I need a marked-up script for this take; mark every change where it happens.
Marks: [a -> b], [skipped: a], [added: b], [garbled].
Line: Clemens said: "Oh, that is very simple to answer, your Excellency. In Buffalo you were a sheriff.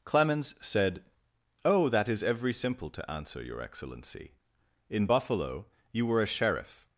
Clemens said: "Oh, that is [very -> every] simple to answer, your Excellency. In Buffalo you were a sheriff.